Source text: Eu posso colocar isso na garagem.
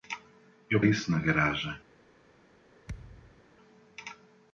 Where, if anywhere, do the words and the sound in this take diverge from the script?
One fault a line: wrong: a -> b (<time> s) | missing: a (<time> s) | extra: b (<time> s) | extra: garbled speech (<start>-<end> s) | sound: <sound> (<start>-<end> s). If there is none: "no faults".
missing: posso colocar (0.8 s)
sound: thud (2.9-3.4 s)